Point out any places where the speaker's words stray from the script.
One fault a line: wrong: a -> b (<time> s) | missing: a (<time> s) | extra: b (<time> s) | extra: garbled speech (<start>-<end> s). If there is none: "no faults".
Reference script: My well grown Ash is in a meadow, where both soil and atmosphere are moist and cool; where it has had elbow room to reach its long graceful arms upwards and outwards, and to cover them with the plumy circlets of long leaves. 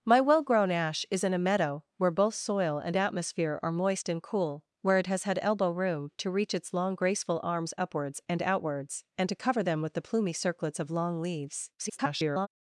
extra: garbled speech (11.8-12.5 s)